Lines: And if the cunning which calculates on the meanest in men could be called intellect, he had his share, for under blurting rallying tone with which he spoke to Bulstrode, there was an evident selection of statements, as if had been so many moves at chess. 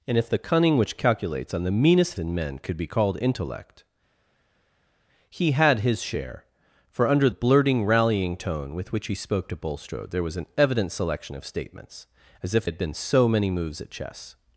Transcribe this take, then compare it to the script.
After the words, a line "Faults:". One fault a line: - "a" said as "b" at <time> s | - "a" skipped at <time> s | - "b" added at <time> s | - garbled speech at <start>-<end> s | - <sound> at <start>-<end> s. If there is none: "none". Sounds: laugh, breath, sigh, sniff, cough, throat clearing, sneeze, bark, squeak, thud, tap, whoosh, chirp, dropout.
And if the cunning which calculates on the meanest in men could be called intellect, he had his share, for under blurting rallying tone with which he spoke to Bulstrode, there was an evident selection of statements, as if had been so many moves at chess.
Faults:
none